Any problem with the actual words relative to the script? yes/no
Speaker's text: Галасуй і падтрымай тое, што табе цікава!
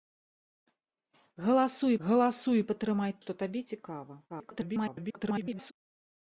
yes